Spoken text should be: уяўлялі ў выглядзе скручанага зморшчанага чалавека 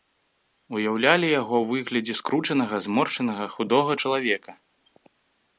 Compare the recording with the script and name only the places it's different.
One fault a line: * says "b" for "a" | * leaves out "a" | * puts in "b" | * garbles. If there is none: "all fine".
* puts in "яго"
* puts in "худога"